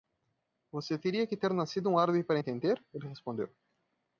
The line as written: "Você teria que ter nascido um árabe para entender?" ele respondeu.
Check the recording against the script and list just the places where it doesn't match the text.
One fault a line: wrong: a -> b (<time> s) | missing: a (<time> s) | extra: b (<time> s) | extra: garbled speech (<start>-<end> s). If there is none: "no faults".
no faults